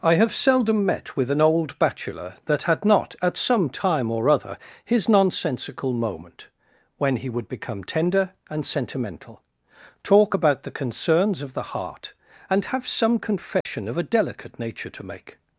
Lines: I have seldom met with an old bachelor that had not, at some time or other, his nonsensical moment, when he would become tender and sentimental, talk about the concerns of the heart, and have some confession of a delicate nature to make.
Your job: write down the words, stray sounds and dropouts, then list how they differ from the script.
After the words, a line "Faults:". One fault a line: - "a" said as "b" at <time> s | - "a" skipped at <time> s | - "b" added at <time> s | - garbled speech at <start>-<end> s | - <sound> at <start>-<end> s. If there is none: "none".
I have seldom met with an old bachelor that had not, at some time or other, his nonsensical moment, when he would become tender and sentimental, talk about the concerns of the heart, and have some confession of a delicate nature to make.
Faults:
- dropout at 13.6-13.7 s